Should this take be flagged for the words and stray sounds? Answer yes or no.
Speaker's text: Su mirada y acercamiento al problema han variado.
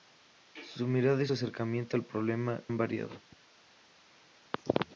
no